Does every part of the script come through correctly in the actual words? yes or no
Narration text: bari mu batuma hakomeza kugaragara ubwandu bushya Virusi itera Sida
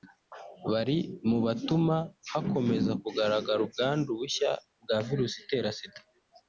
no